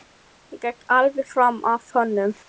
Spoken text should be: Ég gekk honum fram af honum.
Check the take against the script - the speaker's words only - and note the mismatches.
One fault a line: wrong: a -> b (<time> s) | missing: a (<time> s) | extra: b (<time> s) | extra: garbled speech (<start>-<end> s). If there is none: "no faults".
wrong: honum -> alveg (1.0 s)